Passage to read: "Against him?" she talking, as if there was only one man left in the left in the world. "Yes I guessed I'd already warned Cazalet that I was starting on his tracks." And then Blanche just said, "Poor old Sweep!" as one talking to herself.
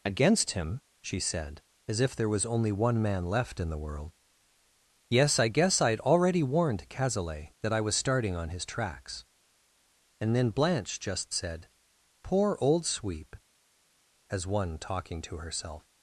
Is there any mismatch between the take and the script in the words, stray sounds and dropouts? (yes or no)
yes